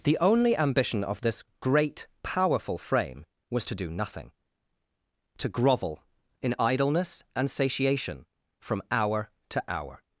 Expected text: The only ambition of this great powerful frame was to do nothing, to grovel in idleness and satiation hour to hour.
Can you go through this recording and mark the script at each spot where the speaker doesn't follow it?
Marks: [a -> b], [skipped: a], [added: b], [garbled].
The only ambition of this great powerful frame was to do nothing, to grovel in idleness and satiation [added: from] hour to hour.